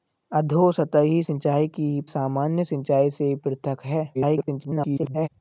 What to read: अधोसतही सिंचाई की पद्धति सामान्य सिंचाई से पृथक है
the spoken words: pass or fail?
fail